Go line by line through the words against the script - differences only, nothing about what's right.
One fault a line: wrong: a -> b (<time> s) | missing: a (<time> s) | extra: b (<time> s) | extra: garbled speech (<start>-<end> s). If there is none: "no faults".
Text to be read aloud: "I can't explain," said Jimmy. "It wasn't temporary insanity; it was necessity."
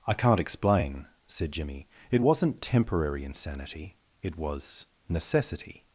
no faults